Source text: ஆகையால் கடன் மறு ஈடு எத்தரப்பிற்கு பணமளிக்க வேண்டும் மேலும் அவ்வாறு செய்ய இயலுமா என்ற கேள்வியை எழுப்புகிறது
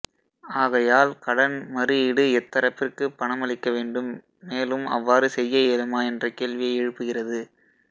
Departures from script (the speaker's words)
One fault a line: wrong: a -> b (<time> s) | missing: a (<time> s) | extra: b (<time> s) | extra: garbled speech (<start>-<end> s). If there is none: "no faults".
no faults